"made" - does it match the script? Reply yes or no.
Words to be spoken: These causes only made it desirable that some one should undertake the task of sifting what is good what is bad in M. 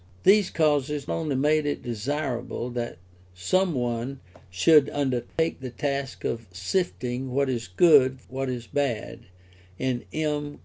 yes